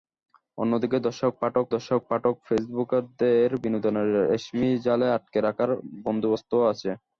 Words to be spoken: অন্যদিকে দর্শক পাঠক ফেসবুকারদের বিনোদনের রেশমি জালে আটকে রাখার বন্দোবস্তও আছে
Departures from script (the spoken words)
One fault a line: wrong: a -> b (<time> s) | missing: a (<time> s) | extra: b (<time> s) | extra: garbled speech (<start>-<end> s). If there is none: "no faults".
extra: দর্শক পাঠক (1.7 s)